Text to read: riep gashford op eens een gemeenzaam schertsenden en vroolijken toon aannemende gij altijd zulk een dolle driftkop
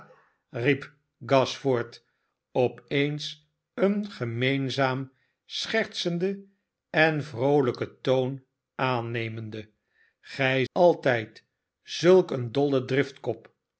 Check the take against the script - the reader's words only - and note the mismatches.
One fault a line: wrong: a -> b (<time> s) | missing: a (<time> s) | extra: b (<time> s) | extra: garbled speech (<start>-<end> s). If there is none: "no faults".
no faults